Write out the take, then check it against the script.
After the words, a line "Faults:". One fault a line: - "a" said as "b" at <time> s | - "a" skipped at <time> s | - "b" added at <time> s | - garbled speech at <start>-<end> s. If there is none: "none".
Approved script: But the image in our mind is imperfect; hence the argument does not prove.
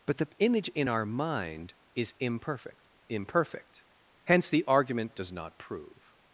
But the image in our mind is imperfect imperfect; hence the argument does not prove.
Faults:
- "imperfect" added at 3.1 s